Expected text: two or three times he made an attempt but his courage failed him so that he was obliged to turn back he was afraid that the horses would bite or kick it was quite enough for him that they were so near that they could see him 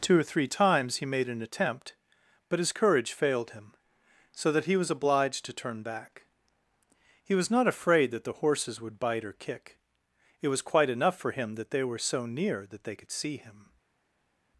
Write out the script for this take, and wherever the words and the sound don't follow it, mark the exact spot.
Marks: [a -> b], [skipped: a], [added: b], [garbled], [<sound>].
two or three times he made an attempt but his courage failed him so that he was obliged to turn back he was [added: not] afraid that the horses would bite or kick it was quite enough for him that they were so near that they could see him